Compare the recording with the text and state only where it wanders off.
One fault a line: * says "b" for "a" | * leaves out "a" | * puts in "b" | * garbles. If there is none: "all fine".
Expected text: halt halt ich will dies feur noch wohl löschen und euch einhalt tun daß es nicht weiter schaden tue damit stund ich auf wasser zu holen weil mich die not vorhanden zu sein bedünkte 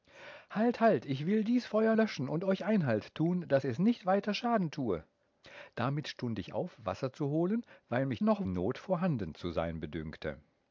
* leaves out "noch wohl"
* says "noch" for "die"